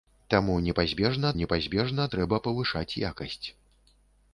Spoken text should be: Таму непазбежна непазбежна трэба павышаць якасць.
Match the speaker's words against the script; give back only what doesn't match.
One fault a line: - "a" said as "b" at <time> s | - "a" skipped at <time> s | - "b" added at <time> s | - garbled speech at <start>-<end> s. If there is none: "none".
none